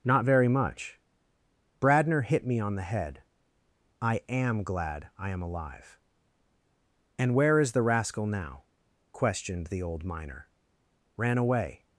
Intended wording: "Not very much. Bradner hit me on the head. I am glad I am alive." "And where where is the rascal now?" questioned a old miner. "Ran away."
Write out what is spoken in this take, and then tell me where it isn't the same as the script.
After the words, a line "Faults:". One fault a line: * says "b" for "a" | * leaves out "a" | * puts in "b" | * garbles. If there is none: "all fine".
"Not very much. Bradner hit me on the head. I am glad I am alive." "And where is the rascal now?" questioned the old miner. "Ran away."
Faults:
* leaves out "where"
* says "the" for "a"